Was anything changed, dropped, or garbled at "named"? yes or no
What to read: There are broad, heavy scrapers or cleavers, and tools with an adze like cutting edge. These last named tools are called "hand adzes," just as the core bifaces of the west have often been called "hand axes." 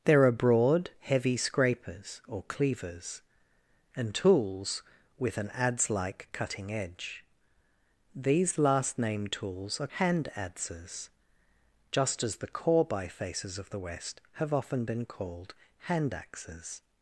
no